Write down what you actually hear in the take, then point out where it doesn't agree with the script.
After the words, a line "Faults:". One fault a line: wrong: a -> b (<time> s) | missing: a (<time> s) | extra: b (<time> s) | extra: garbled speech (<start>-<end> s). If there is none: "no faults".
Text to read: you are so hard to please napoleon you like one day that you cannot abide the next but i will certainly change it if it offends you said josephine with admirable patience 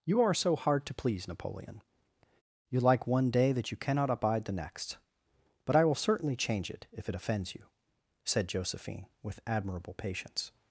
you are so hard to please napoleon you like one day that you cannot abide the next but i will certainly change it if it offends you said josephine with admirable patience
Faults:
no faults